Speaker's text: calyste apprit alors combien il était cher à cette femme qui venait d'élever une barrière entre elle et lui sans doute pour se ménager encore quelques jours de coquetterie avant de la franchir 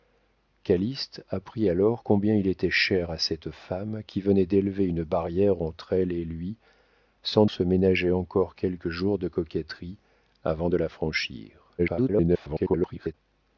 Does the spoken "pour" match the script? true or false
false